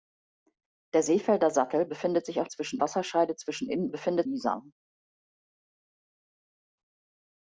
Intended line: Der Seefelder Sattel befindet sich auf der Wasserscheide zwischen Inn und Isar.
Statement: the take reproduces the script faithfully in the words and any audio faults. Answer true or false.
false